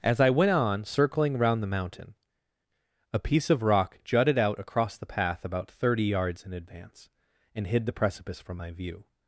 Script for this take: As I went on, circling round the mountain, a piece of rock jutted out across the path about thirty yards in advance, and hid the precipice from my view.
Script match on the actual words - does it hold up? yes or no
yes